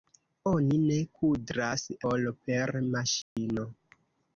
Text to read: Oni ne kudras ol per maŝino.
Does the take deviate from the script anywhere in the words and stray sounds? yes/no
yes